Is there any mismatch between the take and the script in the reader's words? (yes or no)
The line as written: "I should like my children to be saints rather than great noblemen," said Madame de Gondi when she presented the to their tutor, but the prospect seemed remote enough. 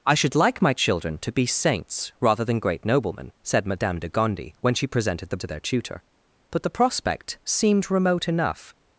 no